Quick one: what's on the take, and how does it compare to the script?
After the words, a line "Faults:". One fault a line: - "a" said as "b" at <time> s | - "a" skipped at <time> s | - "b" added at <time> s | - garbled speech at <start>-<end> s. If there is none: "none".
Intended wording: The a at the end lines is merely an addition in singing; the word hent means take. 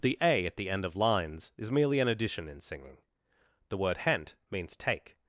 The a at the end of lines is merely an addition in singing; the word hent means take.
Faults:
- "of" added at 0.8 s